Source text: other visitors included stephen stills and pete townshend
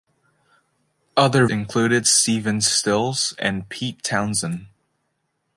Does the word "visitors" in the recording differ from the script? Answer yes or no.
yes